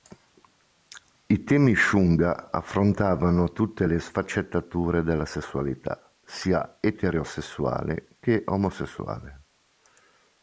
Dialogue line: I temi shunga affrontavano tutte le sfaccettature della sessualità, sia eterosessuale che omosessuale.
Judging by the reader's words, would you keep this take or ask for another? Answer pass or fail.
pass